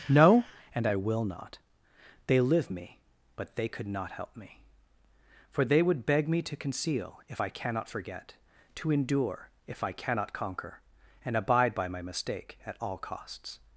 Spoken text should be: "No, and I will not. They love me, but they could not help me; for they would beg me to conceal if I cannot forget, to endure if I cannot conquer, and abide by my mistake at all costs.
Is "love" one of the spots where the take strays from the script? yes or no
yes